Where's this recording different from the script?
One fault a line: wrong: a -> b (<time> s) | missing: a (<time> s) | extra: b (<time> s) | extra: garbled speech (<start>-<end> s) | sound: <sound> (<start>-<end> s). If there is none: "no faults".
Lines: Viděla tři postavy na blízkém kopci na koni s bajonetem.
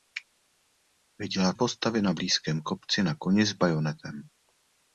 missing: tři (1.5 s)